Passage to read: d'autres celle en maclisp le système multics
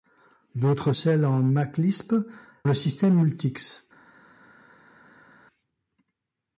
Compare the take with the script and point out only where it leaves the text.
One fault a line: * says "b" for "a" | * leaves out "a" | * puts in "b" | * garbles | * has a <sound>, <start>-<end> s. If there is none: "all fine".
all fine